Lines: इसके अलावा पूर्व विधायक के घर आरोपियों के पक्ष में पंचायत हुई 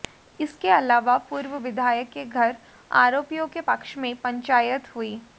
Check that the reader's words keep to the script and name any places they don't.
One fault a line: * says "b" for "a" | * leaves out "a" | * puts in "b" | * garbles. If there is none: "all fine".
all fine